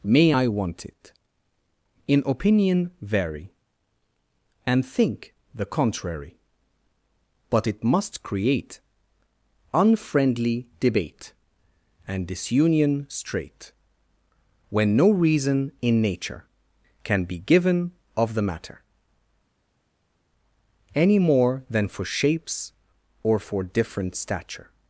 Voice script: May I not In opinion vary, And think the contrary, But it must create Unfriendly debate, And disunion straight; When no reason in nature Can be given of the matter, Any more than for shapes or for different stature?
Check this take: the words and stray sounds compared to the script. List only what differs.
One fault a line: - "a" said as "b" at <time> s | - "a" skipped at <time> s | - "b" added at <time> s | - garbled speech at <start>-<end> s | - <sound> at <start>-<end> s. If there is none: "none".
- "not" said as "want it" at 0.5 s